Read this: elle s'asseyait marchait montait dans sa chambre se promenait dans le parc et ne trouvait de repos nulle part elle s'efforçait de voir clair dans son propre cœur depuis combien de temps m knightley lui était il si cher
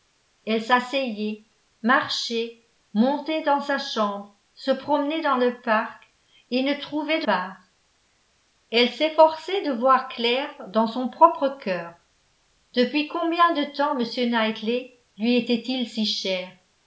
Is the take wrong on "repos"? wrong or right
wrong